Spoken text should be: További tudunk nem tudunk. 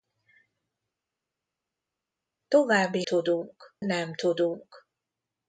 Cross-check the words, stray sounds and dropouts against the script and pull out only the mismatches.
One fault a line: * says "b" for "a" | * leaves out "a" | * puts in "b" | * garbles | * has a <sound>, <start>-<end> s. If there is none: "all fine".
all fine